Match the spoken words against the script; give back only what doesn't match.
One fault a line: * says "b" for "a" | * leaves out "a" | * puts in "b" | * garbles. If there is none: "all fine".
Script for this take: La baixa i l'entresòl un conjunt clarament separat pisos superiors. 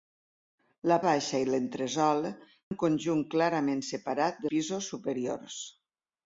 all fine